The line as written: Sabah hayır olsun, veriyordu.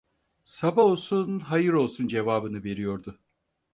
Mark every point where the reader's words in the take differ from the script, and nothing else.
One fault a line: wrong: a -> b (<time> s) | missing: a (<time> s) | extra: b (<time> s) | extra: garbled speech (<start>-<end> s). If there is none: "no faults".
extra: olsun (0.8 s)
extra: cevabını (2.1 s)